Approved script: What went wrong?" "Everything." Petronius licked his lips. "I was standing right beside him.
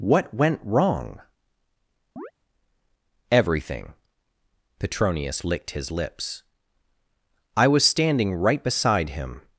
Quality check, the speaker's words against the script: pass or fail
pass